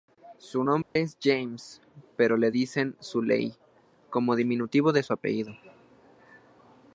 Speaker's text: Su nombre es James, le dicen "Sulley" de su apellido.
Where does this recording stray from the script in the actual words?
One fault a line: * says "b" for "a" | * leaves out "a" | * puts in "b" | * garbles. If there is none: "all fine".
* puts in "pero"
* puts in "como diminutivo"